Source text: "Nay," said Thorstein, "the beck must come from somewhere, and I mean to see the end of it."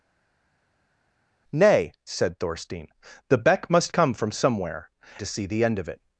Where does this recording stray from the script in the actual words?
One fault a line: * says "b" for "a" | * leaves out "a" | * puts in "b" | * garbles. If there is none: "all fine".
* leaves out "and I mean"